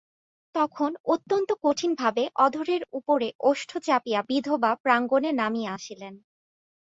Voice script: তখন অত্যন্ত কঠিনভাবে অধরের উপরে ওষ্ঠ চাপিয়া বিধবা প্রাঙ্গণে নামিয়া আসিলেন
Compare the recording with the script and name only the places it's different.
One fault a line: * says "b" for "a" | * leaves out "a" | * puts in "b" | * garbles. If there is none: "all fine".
all fine